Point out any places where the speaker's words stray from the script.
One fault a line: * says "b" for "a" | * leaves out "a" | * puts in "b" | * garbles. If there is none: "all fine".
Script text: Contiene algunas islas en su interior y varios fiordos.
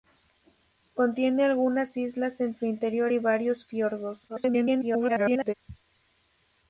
* garbles